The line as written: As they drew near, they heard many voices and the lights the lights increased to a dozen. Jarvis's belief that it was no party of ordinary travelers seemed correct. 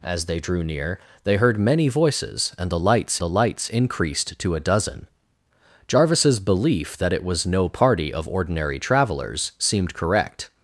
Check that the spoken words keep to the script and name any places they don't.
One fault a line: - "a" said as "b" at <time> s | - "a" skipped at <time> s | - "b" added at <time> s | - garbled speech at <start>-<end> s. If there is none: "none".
none